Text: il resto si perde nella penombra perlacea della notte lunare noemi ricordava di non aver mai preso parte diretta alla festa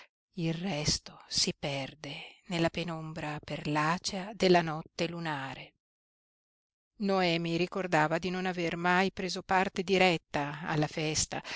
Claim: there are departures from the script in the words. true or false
false